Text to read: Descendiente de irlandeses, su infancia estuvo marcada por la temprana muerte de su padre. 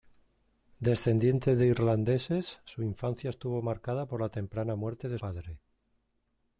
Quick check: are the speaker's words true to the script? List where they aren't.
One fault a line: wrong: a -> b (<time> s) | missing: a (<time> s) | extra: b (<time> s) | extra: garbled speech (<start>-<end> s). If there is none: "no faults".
missing: su (5.2 s)